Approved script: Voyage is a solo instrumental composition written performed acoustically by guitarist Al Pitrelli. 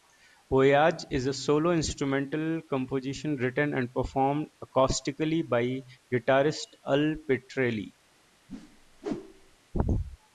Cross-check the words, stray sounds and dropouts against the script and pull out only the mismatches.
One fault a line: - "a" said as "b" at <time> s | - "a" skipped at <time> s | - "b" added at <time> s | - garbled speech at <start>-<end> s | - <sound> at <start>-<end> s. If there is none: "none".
- "and" added at 3.8 s
- whoosh at 8.5-9.6 s